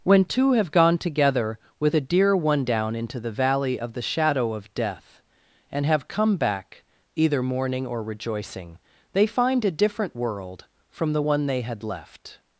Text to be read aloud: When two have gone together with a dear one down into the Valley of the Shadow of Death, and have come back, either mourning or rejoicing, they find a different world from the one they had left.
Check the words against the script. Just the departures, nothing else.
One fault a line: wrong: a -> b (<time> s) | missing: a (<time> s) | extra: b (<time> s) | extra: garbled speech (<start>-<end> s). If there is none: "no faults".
no faults